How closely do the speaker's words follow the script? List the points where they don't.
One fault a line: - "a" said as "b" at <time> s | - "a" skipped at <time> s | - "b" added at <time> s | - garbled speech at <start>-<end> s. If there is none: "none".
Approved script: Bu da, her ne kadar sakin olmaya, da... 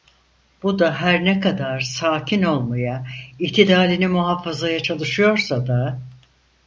- "itidalini muhafazaya çalışıyorsa" added at 3.4 s